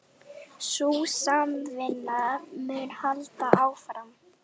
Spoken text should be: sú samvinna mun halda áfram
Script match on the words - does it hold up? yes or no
yes